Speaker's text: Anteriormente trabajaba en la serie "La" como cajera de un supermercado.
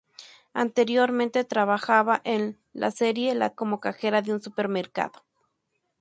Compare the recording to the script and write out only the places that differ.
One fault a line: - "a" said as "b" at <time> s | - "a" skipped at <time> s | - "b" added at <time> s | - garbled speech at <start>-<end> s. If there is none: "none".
none